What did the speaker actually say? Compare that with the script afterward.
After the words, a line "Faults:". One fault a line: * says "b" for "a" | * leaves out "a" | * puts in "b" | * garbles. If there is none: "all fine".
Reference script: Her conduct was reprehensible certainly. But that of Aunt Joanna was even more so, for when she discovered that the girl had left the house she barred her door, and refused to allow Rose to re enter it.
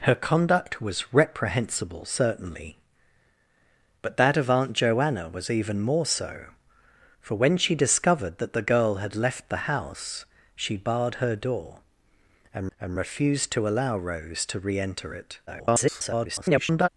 Her conduct was reprehensible certainly. But that of Aunt Joanna was even more so, for when she discovered that the girl had left the house she barred her door, and and refused to allow Rose to re enter it. [garbled]
Faults:
* puts in "and"
* garbles